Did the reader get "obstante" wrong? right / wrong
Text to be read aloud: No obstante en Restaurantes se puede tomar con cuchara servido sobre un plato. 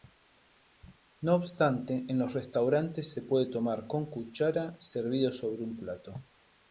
right